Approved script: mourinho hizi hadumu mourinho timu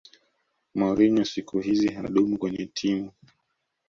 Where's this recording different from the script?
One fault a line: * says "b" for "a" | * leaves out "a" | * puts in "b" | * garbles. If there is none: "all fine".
* puts in "siku"
* says "kwenye" for "mourinho"